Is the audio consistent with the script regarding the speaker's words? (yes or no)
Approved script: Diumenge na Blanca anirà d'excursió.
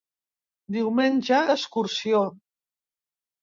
no